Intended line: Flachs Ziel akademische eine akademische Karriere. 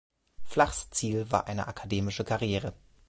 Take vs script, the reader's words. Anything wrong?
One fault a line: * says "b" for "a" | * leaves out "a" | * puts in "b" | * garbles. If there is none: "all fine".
* says "war" for "akademische"